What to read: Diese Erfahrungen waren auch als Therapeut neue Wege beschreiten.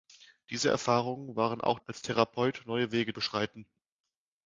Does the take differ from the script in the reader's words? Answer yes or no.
no